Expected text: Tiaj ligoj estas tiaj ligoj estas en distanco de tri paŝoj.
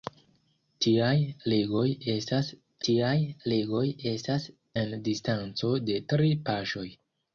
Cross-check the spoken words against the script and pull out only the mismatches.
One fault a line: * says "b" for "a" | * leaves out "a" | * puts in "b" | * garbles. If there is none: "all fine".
all fine